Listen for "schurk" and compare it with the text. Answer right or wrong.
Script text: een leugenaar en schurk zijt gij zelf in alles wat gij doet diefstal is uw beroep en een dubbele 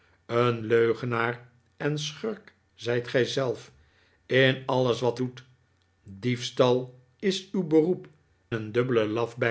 right